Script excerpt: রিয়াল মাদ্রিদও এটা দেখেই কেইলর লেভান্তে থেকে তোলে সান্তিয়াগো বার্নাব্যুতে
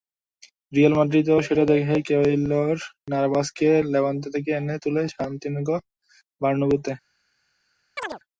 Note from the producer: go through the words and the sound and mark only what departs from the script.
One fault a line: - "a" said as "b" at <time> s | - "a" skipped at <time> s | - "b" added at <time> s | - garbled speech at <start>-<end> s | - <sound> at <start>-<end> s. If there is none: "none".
- "এটা" said as "সেটা" at 1.5 s
- "নাভাসকে" added at 3.1 s
- "এনে" added at 4.6 s
- chirp at 8.0-8.2 s